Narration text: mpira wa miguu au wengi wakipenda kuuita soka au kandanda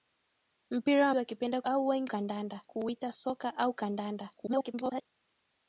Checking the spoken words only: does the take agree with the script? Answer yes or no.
no